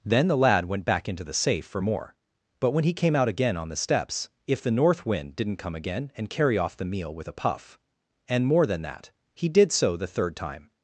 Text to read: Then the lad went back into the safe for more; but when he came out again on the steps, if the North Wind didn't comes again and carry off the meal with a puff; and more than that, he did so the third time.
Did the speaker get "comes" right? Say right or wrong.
wrong